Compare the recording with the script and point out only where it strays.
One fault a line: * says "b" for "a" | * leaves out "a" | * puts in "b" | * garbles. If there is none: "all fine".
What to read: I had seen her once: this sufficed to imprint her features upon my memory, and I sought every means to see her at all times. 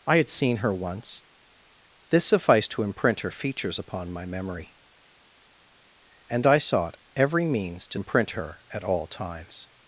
* says "imprint" for "see"